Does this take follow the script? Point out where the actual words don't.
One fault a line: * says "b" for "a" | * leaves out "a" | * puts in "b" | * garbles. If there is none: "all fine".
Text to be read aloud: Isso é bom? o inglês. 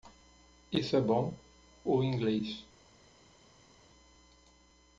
all fine